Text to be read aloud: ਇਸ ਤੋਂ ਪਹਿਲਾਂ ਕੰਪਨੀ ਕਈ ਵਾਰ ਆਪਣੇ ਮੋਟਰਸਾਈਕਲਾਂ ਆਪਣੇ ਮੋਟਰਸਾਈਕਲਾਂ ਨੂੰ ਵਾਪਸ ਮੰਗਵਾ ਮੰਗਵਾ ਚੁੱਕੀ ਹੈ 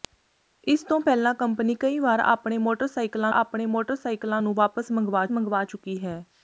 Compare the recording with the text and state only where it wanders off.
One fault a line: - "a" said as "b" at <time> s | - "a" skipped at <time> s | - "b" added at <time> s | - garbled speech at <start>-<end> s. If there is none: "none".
none